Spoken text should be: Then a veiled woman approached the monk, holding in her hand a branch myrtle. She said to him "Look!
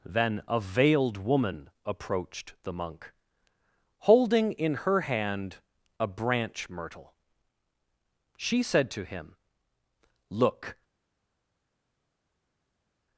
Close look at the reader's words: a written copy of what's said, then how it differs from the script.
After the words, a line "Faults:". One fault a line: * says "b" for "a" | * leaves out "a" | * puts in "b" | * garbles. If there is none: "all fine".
Then a veiled woman approached the monk, holding in her hand a branch myrtle. She said to him "Look!
Faults:
all fine